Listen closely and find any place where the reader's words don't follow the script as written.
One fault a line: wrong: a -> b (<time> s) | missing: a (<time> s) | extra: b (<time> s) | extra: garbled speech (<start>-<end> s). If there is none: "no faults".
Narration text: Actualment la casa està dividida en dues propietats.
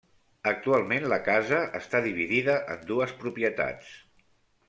no faults